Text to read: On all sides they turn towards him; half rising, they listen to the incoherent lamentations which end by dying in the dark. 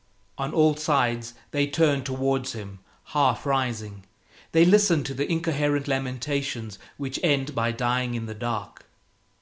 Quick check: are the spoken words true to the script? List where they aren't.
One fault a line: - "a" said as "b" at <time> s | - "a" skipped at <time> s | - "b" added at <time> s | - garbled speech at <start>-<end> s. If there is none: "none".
none